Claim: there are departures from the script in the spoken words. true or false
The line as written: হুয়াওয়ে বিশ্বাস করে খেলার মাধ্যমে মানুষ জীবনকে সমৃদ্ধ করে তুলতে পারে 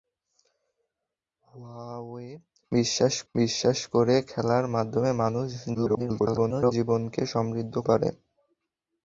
true